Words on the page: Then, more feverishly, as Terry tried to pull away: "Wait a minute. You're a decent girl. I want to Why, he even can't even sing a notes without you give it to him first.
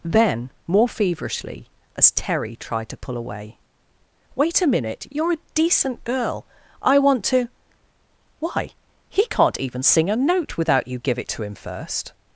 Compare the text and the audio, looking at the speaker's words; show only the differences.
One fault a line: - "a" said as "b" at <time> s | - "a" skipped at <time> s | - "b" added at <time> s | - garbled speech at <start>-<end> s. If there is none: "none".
- "even" skipped at 9.3 s
- "notes" said as "note" at 10.2 s